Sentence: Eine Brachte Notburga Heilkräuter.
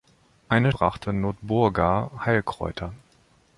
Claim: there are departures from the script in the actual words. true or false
false